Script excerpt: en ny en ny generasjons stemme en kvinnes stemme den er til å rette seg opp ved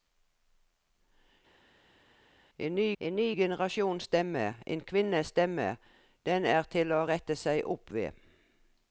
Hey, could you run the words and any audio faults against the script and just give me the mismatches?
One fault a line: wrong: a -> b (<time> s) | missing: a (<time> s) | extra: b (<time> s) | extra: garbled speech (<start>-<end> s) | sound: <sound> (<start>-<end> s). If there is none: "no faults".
no faults